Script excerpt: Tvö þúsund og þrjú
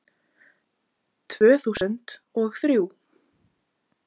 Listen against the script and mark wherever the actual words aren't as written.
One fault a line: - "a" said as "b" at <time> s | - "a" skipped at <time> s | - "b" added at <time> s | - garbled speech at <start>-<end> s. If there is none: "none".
none